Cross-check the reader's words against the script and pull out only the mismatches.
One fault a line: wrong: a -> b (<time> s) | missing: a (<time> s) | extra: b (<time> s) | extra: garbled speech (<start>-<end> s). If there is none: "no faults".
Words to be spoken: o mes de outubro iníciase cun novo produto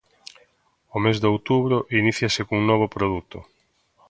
no faults